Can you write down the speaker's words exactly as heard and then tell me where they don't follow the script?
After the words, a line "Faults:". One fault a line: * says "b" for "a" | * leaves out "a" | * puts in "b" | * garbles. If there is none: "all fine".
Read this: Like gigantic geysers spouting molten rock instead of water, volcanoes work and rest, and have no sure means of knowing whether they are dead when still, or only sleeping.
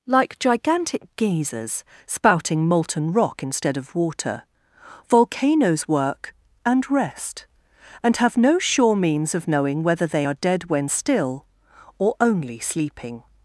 Like gigantic geysers spouting molten rock instead of water, volcanoes work and rest, and have no sure means of knowing whether they are dead when still, or only sleeping.
Faults:
all fine